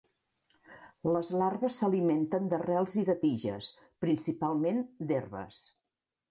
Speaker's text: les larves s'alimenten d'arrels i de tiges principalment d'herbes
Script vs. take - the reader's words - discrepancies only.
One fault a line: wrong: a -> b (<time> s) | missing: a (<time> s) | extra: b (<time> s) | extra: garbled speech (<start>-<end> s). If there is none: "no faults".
no faults